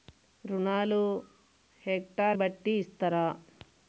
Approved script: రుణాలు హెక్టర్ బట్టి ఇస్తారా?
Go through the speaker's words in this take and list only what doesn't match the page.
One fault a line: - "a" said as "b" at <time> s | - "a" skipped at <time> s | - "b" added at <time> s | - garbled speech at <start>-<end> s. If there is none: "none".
none